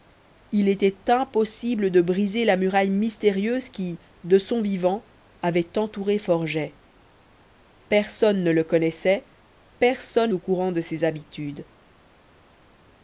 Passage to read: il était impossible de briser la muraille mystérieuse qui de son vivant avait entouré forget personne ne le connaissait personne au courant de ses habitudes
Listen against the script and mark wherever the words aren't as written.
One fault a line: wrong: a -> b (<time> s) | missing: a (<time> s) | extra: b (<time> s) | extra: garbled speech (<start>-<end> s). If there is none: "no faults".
no faults